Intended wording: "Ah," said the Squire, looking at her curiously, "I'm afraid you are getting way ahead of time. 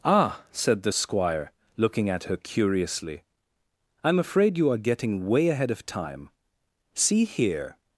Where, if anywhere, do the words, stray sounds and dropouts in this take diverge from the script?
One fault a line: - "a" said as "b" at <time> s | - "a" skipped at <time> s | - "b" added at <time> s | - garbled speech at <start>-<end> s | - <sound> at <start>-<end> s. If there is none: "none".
- "See here" added at 6.9 s